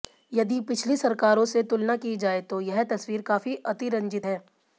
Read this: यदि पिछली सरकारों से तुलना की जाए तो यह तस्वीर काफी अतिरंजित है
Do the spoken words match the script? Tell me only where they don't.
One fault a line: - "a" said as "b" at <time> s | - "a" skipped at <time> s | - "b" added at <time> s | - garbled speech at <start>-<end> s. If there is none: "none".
none